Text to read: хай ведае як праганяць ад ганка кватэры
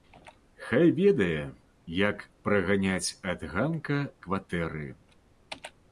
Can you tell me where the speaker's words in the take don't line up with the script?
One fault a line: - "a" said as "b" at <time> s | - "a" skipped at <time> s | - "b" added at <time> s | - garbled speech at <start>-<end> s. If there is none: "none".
none